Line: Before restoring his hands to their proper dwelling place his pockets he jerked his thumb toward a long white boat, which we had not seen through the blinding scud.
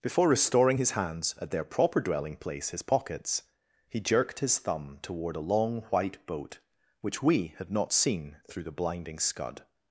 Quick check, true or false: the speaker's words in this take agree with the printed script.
false